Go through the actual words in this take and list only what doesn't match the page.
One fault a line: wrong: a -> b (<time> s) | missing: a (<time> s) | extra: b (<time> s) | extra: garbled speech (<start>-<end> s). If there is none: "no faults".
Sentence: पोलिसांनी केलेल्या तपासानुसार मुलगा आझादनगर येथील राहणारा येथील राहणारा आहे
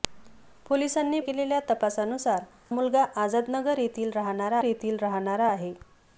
no faults